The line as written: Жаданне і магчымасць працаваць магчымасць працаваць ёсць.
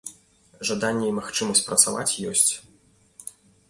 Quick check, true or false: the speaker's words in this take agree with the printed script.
false